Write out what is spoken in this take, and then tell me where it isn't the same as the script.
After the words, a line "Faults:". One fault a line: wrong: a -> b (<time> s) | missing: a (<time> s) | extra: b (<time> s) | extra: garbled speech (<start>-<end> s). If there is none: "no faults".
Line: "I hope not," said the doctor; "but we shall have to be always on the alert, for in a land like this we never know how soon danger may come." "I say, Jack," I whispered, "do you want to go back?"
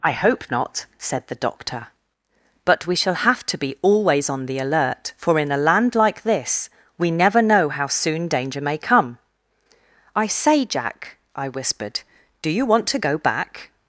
"I hope not," said the doctor; "but we shall have to be always on the alert, for in a land like this we never know how soon danger may come." "I say, Jack," I whispered, "do you want to go back?"
Faults:
no faults